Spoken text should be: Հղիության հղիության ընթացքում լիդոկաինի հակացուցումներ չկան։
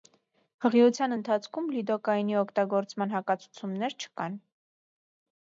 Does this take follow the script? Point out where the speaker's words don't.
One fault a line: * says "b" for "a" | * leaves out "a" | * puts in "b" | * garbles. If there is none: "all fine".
* leaves out "հղիության"
* puts in "օգտագործման"